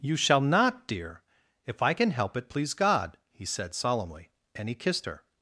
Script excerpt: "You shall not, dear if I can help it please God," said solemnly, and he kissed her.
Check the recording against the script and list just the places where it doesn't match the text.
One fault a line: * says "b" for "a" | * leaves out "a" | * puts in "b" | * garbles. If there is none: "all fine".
* puts in "he"